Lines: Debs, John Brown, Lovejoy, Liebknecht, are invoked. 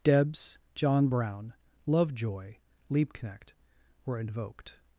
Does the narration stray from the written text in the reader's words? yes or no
yes